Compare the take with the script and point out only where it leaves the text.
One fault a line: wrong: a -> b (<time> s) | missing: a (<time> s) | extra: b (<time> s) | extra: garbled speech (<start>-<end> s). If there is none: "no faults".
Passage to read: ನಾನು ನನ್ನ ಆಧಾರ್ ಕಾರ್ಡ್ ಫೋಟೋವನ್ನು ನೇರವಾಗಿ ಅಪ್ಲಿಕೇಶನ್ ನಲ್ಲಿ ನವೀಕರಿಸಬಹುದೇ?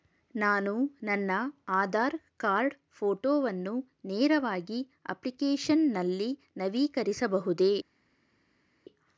no faults